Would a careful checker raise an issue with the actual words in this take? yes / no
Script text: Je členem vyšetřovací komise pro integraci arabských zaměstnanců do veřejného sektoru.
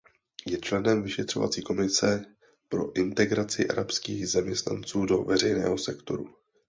no